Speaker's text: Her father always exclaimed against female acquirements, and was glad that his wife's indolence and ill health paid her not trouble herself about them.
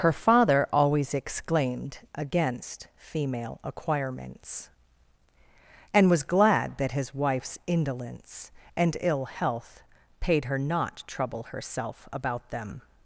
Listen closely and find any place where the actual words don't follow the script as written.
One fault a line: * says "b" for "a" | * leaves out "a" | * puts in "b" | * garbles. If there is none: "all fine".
all fine